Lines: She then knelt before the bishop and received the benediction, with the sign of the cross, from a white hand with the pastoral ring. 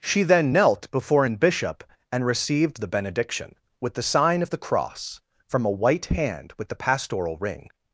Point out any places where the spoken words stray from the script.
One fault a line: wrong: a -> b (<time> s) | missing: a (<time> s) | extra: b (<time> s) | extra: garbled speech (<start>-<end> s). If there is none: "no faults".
wrong: the -> an (1.2 s)